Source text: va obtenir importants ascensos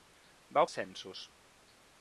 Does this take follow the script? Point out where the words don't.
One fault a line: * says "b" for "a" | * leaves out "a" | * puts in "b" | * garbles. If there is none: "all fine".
* leaves out "obtenir importants"